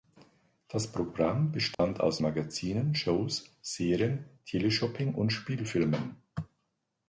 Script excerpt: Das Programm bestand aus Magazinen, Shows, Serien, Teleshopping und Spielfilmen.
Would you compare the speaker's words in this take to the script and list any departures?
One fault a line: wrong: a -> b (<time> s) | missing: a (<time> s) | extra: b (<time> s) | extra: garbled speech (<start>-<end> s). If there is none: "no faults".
no faults